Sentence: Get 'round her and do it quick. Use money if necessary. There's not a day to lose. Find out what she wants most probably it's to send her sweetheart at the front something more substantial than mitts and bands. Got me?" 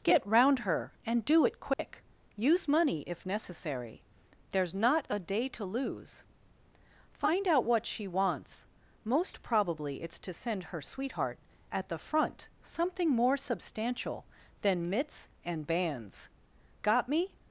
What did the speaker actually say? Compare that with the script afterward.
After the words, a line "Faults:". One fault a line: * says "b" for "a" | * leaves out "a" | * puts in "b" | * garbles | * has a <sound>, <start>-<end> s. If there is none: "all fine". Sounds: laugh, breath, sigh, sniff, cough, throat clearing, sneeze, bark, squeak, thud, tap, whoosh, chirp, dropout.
Get 'round her and do it quick. Use money if necessary. There's not a day to lose. Find out what she wants most probably it's to send her sweetheart at the front something more substantial than mitts and bands. Got me?"
Faults:
* has a dropout, 1.7-1.8 s